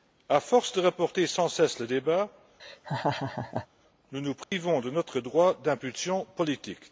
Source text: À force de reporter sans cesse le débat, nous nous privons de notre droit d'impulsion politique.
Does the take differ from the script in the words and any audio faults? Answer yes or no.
yes